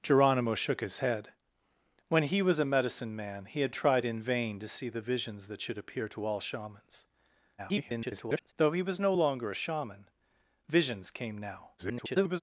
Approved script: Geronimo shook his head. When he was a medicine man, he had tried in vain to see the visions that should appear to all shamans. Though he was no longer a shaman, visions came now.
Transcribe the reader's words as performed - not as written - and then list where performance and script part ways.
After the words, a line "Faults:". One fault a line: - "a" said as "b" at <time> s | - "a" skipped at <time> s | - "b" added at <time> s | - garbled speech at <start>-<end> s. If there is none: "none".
Geronimo shook his head. When he was a medicine man, he had tried in vain to see the visions that should appear to all shamans. [garbled] Though he was no longer a shaman, visions came now. [garbled]
Faults:
- garbled speech at 7.6-8.5 s
- garbled speech at 11.8-12.4 s